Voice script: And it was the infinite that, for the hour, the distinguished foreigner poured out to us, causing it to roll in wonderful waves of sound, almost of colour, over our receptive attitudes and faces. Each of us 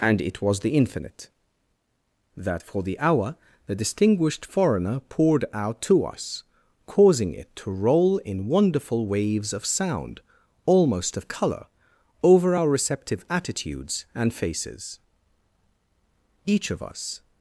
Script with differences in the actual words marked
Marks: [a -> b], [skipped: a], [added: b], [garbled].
And it was the infinite that, for the hour, the distinguished foreigner poured out to us, causing it to roll in wonderful waves of sound, almost of colour, over our receptive attitudes and faces. Each of us